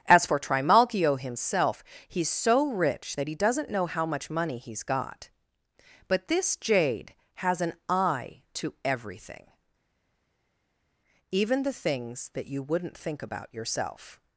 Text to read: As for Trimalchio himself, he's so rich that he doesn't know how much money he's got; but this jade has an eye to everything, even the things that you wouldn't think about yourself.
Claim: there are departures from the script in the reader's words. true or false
false